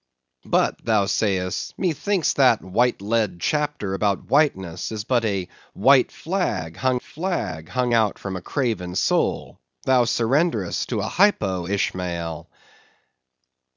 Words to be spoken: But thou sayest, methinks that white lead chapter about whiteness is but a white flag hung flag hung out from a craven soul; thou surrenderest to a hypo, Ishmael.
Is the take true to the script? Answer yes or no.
yes